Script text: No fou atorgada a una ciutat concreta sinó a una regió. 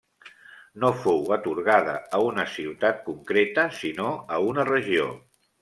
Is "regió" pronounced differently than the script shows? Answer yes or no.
no